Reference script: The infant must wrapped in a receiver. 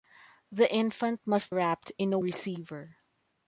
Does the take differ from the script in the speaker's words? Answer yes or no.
no